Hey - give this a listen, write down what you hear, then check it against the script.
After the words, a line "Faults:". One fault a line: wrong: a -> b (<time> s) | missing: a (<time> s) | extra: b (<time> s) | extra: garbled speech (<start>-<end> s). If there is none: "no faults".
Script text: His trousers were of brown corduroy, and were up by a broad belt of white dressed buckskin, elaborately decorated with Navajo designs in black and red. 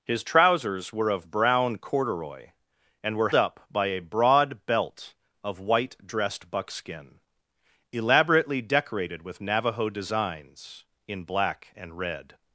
His trousers were of brown corduroy, and were up by a broad belt of white dressed buckskin, elaborately decorated with Navajo designs in black and red.
Faults:
no faults